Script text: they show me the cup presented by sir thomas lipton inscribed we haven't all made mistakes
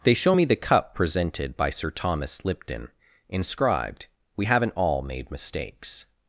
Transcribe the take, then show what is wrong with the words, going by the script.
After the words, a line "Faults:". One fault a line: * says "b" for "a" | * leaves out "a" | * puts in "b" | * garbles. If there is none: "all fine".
they show me the cup presented by sir thomas lipton inscribed we haven't all made mistakes
Faults:
all fine